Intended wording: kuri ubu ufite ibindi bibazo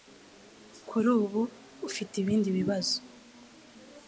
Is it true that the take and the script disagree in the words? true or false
false